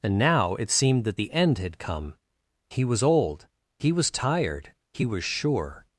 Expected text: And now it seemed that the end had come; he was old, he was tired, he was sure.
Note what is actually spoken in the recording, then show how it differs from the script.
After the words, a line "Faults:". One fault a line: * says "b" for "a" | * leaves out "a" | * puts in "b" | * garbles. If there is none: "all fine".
And now it seemed that the end had come; he was old, he was tired, he was sure.
Faults:
all fine